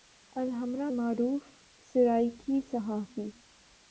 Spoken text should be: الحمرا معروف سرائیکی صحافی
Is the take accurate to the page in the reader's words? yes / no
yes